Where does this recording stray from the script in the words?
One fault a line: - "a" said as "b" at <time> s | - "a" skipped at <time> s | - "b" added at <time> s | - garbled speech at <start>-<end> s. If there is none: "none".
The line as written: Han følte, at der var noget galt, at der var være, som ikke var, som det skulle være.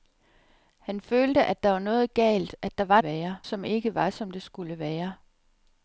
none